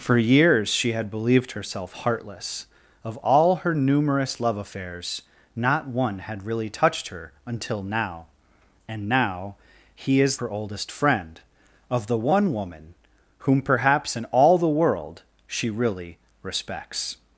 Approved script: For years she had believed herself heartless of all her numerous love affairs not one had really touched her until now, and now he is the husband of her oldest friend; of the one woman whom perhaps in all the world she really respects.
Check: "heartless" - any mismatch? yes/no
no